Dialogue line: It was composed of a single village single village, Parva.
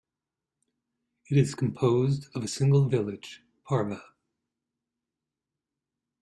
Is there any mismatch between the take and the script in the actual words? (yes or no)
yes